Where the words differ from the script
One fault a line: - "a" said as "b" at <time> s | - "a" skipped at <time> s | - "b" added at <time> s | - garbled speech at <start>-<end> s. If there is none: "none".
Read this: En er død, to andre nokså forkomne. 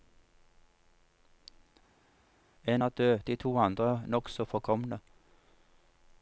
- "de" added at 3.2 s